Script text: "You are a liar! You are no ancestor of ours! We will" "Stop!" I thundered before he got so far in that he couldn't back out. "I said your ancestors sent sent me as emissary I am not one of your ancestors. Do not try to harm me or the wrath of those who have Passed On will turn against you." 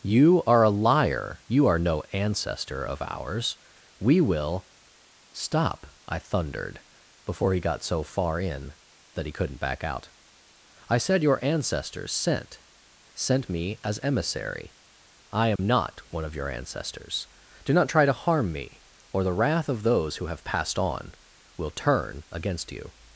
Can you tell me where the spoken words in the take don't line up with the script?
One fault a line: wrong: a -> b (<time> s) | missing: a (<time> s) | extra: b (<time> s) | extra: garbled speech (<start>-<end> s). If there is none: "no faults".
no faults